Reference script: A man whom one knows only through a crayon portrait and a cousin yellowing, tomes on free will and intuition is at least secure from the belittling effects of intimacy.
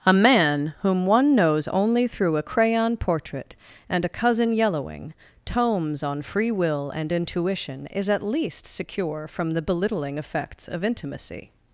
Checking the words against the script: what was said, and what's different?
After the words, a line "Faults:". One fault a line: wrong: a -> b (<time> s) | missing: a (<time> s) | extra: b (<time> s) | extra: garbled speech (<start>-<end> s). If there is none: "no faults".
A man whom one knows only through a crayon portrait and a cousin yellowing, tomes on free will and intuition is at least secure from the belittling effects of intimacy.
Faults:
no faults